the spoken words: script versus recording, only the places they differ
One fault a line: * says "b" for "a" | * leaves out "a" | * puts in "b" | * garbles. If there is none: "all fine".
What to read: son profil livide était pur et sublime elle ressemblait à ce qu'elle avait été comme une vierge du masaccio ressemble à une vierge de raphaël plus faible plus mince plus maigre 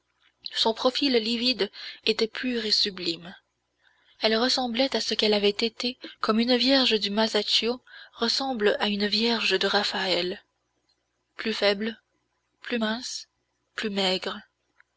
all fine